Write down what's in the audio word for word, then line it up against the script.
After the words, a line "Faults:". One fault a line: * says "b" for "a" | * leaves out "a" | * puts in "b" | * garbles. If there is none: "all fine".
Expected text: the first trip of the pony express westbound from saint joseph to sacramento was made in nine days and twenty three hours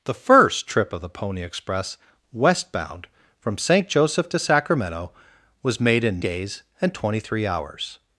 the first trip of the pony express westbound from saint joseph to sacramento was made in days and twenty three hours
Faults:
* leaves out "nine"